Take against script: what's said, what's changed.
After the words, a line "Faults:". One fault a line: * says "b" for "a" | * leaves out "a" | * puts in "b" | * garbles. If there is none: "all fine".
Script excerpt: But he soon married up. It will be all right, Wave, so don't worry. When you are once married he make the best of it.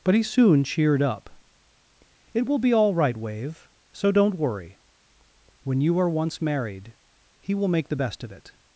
But he soon cheered up. It will be all right, Wave, so don't worry. When you are once married he will make the best of it.
Faults:
* says "cheered" for "married"
* puts in "will"